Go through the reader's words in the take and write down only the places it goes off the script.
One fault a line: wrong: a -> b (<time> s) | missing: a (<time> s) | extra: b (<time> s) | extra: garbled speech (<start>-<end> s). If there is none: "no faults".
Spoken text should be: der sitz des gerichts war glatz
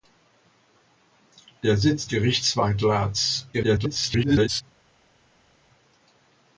missing: des (2.1 s)
extra: garbled speech (3.5-4.6 s)